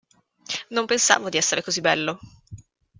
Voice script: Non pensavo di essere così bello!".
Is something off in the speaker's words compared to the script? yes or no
no